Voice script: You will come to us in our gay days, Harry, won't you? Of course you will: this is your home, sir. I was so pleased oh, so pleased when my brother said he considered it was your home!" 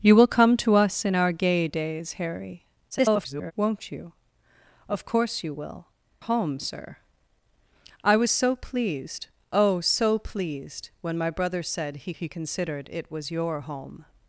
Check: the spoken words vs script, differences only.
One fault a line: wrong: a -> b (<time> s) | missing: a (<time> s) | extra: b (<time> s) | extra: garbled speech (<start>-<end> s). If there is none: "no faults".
extra: garbled speech (2.9-3.5 s)
missing: this is your (5.9 s)
extra: he (12.1 s)